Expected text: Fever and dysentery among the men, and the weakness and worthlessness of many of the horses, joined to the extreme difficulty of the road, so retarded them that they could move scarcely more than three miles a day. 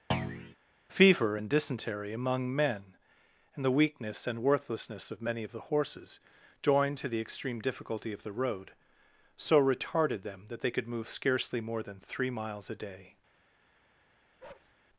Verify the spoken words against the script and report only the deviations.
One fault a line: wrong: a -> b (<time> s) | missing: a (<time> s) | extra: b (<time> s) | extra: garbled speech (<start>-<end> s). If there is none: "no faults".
missing: the (2.5 s)